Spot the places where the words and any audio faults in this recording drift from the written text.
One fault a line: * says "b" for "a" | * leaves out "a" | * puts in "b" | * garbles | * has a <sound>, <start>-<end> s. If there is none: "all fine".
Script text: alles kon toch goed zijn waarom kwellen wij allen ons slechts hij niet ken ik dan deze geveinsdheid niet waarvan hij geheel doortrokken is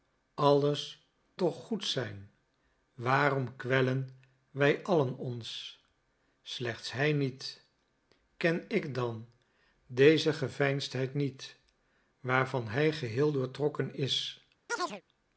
* leaves out "kon"
* has a chirp, 14.7-15.0 s